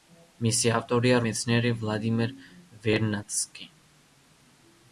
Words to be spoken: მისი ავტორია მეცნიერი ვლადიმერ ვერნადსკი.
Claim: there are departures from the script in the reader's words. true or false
false